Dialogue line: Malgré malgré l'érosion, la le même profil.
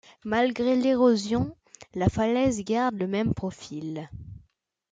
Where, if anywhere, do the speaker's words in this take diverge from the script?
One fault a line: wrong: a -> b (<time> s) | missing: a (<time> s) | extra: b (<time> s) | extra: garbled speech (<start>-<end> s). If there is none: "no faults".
missing: malgré (0.8 s)
extra: falaise garde (2.1 s)